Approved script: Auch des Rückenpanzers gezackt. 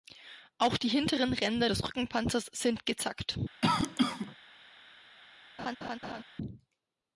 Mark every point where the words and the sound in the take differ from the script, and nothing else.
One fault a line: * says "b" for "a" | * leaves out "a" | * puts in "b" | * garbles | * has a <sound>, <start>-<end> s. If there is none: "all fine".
* puts in "die hinteren Ränder"
* puts in "sind"
* has a cough, 3.6-4.4 s
* has a laugh, 5.6-6.2 s